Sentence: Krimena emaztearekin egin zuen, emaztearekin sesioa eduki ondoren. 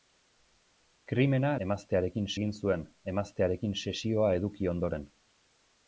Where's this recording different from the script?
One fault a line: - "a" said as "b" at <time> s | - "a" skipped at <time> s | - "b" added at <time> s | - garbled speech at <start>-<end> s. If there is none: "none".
none